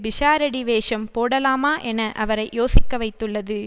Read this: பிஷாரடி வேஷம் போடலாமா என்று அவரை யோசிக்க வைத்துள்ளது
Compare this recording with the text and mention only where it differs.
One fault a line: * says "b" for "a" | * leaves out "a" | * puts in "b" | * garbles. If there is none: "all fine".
* says "என" for "என்று"